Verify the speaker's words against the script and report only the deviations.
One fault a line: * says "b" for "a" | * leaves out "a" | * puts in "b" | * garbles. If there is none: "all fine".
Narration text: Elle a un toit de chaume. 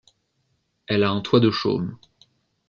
all fine